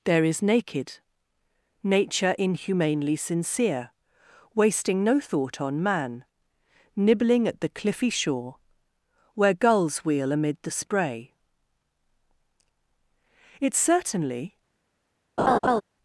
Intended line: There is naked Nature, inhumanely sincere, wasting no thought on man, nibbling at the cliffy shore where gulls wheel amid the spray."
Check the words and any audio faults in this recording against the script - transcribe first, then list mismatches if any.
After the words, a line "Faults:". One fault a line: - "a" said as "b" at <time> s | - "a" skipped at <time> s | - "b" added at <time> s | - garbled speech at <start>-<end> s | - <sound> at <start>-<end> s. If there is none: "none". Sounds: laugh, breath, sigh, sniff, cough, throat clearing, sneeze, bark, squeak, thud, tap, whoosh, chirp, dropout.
There is naked Nature, inhumanely sincere, wasting no thought on man, nibbling at the cliffy shore where gulls wheel amid the spray." It certainly
Faults:
- "It certainly" added at 13.6 s
- laugh at 15.4-15.8 s